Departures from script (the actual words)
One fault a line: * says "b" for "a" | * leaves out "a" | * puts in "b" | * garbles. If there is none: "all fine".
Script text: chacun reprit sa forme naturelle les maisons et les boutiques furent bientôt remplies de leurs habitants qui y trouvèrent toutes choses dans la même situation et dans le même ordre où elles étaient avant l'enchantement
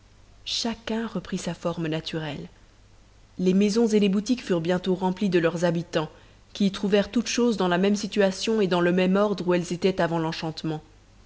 all fine